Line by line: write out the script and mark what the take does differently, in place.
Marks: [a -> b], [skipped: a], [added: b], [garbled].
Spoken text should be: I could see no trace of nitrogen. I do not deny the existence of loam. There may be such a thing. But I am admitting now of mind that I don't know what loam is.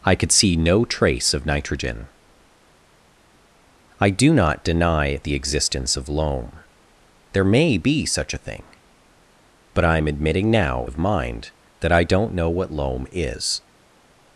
I could see no trace of nitrogen. I do not deny the existence of loam. There may be such a thing. But I am admitting now of mind that I don't know what loam is.